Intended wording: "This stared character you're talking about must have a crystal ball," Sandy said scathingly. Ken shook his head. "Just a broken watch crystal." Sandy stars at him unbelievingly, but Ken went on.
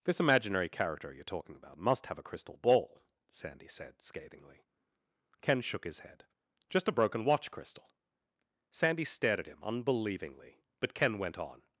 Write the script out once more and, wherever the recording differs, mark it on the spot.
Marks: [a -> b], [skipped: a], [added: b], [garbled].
"This [stared -> imaginary] character you're talking about must have a crystal ball," Sandy said scathingly. Ken shook his head. "Just a broken watch crystal." Sandy [stars -> stared] at him unbelievingly, but Ken went on.